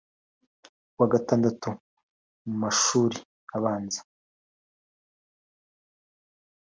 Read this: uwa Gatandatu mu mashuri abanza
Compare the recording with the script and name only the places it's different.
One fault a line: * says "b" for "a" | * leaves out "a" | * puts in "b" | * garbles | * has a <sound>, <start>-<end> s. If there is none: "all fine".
all fine